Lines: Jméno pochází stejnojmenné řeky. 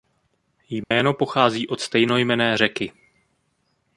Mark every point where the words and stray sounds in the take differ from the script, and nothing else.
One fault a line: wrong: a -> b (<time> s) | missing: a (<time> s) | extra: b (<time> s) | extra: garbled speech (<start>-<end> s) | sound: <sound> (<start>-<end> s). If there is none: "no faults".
sound: dropout (0.8-0.9 s)
extra: od (1.7 s)